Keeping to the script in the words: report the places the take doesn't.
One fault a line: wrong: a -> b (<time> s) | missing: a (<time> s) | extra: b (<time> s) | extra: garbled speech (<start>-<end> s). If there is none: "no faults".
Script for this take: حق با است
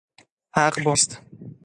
no faults